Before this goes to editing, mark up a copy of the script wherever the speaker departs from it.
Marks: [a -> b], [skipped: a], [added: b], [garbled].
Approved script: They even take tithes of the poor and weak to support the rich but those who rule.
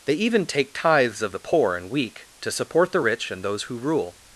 They even take tithes of the poor and weak to support the rich [but -> and] those who rule.